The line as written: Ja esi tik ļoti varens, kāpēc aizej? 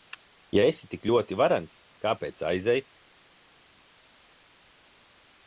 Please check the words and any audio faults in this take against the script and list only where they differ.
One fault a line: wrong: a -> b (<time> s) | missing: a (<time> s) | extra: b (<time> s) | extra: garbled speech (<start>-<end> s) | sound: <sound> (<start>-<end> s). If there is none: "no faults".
no faults